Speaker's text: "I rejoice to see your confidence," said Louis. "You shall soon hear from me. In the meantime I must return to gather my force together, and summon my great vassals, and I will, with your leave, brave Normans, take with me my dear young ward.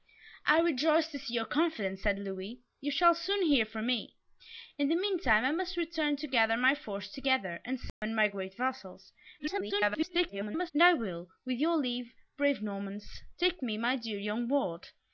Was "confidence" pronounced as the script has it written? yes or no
yes